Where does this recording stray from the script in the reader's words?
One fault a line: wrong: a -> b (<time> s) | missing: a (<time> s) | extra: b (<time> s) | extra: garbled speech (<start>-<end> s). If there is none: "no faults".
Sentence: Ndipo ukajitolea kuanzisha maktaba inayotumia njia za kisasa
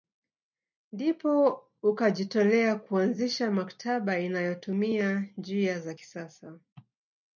no faults